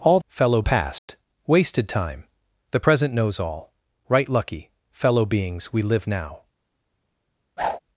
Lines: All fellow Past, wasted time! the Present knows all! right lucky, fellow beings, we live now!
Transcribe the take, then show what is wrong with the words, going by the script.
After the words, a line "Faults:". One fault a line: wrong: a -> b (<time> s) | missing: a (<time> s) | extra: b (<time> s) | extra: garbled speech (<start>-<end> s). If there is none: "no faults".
All fellow Past, wasted time! the Present knows all! right lucky, fellow beings, we live now!
Faults:
no faults